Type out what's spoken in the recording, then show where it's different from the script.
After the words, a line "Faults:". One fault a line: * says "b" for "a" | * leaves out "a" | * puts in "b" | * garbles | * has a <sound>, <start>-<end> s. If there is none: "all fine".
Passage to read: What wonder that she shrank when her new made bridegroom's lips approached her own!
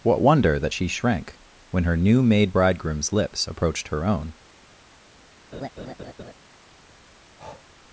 What wonder that she shrank when her new made bridegroom's lips approached her own!
Faults:
* has a laugh, 5.5-6.3 s
* has a breath, 7.4-7.7 s